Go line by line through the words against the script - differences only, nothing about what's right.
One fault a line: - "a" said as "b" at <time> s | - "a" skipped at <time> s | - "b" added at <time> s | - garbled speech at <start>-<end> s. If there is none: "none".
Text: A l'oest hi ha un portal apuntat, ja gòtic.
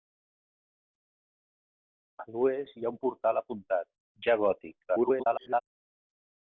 - garbled speech at 4.8-5.6 s